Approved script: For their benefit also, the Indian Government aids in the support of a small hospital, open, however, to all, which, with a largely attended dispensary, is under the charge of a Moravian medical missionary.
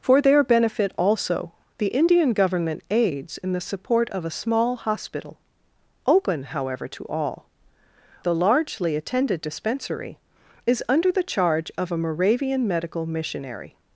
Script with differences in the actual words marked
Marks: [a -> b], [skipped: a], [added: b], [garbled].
For their benefit also, the Indian Government aids in the support of a small hospital, open, however, to all, [skipped: which, with] a largely attended dispensary, is under the charge of a Moravian medical missionary.